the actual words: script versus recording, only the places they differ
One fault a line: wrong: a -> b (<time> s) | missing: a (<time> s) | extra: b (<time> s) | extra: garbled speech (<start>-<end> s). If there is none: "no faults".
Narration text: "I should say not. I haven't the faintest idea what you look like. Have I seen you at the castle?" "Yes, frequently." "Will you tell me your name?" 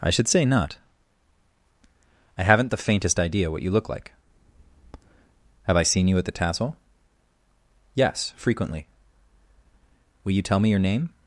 wrong: castle -> tassel (6.3 s)